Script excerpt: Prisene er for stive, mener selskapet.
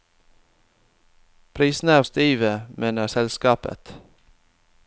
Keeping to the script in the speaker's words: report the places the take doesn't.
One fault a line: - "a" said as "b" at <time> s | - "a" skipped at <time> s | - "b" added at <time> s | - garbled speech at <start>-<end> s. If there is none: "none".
- "for" skipped at 2.0 s